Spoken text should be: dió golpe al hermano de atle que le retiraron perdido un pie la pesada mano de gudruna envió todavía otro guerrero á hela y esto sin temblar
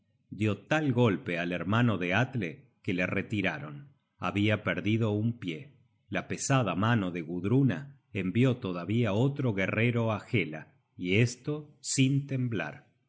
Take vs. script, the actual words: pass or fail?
fail